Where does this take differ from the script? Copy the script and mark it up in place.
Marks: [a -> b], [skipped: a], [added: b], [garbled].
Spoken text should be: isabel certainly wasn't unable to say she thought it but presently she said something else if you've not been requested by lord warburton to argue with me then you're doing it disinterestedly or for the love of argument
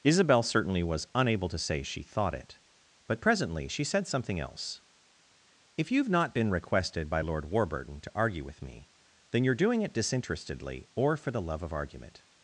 isabel certainly [wasn't -> was] unable to say she thought it but presently she said something else if you've not been requested by lord warburton to argue with me then you're doing it disinterestedly or for the love of argument